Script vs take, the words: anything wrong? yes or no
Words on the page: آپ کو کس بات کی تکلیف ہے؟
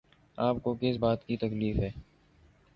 no